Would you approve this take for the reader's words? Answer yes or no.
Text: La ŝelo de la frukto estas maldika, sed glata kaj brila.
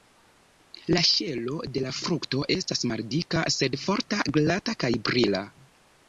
no